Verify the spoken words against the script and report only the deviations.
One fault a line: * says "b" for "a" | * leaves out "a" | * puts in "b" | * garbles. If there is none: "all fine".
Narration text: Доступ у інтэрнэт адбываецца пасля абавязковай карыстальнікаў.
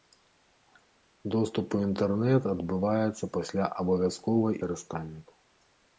all fine